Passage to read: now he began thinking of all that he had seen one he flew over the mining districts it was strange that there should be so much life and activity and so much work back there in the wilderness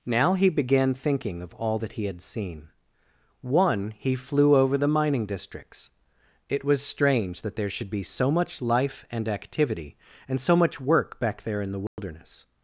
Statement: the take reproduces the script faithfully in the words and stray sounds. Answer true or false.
false